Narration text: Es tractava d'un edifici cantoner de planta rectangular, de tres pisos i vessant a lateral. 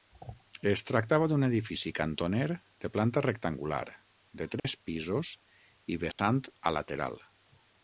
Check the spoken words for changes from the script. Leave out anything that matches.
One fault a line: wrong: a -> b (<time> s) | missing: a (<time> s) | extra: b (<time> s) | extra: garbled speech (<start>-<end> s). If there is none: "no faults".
no faults